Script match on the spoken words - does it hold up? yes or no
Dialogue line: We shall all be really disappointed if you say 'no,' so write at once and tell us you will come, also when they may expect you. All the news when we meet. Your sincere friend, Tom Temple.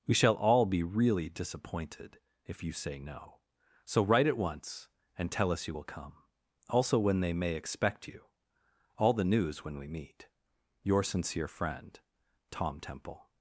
yes